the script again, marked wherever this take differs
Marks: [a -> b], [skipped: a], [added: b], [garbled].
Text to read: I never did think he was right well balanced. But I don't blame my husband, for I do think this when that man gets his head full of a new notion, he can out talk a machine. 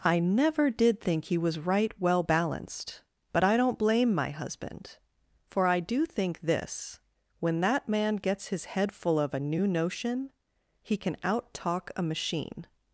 I never did think he was right well balanced. But I don't blame my husband, for I do think this when that man gets his head full of a new notion, he can out talk a machine.